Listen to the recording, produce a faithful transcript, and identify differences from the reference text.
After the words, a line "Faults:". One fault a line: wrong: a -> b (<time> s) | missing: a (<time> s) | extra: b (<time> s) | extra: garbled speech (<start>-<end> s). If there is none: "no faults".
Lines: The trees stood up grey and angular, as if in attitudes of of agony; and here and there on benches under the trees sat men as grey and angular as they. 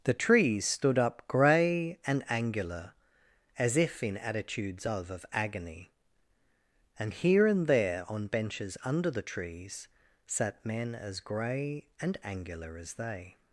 The trees stood up grey and angular, as if in attitudes of of agony; and here and there on benches under the trees sat men as grey and angular as they.
Faults:
no faults